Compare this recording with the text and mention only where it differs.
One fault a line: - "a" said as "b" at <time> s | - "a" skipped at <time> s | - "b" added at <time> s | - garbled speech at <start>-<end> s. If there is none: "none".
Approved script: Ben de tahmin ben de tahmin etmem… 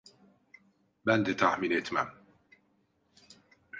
- "ben de tahmin" skipped at 1.7 s